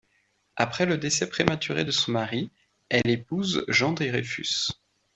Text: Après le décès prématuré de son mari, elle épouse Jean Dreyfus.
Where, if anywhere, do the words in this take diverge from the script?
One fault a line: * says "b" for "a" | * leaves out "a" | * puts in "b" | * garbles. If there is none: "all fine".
all fine